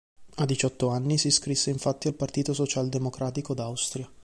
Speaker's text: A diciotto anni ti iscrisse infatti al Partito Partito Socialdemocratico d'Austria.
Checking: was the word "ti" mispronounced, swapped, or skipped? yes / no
yes